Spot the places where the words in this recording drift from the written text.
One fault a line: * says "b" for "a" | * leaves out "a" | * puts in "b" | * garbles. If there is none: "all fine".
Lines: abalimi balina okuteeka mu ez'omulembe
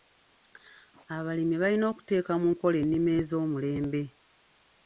* puts in "nkola ennima"